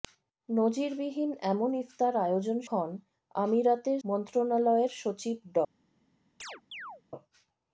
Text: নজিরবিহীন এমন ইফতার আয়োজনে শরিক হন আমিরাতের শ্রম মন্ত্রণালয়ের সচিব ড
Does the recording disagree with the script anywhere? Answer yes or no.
yes